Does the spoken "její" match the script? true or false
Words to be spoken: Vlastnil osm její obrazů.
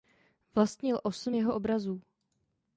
false